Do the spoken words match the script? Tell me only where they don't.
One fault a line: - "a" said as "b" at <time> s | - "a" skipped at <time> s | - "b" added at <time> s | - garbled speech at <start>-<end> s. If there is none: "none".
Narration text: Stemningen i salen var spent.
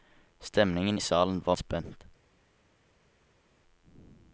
none